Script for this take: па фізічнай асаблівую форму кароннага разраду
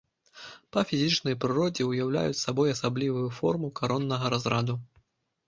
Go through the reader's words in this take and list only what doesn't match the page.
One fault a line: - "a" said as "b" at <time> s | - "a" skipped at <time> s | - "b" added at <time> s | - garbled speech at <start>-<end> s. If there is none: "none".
- "прыродзе ўяўляюць сабой" added at 1.4 s